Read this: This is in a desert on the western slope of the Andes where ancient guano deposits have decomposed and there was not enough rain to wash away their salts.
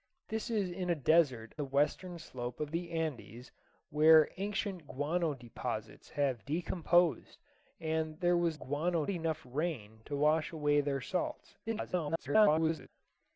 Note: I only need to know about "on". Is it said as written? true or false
false